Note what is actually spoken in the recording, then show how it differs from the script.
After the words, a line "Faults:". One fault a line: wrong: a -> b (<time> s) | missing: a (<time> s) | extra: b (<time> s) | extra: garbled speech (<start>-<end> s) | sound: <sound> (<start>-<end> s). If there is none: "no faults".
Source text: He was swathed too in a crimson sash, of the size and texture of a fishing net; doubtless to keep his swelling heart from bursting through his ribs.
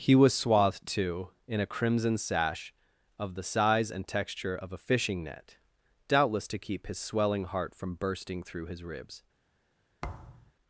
He was swathed too in a crimson sash, of the size and texture of a fishing net; doubtless to keep his swelling heart from bursting through his ribs.
Faults:
sound: thud (10.0-10.5 s)